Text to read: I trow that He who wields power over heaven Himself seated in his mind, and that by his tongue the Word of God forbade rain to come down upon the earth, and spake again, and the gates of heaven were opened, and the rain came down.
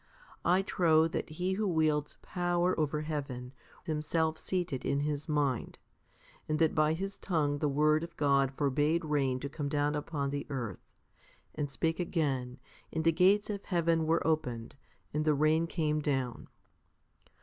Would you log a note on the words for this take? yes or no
no